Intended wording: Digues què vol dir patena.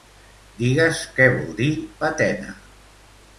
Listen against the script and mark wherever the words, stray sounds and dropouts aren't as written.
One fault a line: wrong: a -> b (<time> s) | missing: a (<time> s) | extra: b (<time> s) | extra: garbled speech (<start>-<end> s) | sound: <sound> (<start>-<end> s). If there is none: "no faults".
no faults